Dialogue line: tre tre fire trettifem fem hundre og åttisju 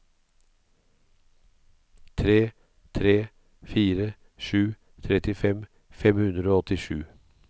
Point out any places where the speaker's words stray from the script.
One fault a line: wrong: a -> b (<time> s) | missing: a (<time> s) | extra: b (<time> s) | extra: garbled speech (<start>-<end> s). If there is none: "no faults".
extra: sju (4.5 s)